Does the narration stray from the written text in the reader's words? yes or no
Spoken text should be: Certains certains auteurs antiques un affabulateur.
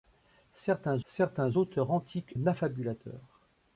no